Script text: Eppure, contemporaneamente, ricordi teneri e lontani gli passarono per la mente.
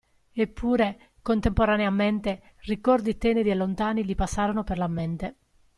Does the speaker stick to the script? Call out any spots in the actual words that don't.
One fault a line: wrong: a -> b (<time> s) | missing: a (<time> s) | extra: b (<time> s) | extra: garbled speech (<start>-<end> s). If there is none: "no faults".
no faults